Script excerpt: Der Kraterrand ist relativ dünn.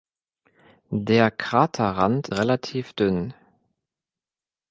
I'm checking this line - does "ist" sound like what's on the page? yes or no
no